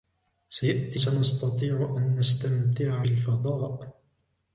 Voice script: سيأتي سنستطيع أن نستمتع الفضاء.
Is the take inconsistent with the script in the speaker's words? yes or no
no